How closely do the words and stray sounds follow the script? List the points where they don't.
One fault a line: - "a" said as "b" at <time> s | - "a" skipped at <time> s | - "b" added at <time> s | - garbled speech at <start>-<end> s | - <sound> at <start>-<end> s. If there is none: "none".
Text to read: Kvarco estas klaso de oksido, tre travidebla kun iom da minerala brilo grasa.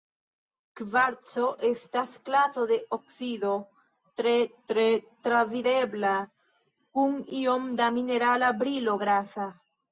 - "tre" added at 4.7 s